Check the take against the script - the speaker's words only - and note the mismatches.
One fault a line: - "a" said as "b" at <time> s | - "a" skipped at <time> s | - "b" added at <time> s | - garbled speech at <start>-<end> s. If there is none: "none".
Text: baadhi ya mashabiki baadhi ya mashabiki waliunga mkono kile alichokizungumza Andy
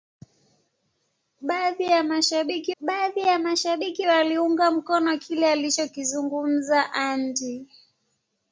none